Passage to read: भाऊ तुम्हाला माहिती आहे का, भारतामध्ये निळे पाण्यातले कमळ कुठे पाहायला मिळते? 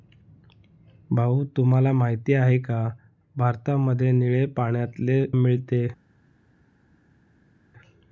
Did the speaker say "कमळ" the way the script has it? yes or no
no